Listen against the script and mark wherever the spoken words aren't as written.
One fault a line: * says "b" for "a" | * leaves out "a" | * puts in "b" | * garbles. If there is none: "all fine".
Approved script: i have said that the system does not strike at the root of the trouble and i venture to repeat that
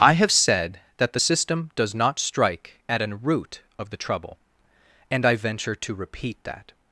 * says "an" for "the"